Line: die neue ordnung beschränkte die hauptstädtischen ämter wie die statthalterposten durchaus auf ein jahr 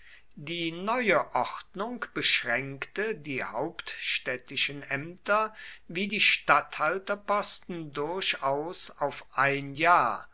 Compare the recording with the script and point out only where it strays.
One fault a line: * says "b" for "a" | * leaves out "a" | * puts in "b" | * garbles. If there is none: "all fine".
all fine